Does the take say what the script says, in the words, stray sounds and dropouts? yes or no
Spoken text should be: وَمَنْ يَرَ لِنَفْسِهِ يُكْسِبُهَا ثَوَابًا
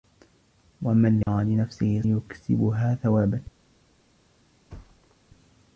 no